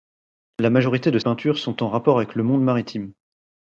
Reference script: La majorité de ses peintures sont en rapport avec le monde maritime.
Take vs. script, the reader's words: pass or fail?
fail